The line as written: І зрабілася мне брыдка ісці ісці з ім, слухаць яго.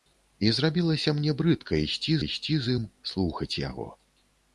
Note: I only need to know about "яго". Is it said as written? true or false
true